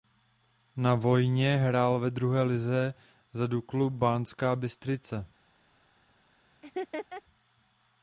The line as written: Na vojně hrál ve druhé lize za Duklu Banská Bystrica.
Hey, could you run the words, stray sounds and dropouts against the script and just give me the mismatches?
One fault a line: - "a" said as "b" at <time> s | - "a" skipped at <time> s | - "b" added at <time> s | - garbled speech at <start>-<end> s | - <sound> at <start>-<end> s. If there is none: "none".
- laugh at 6.6-7.2 s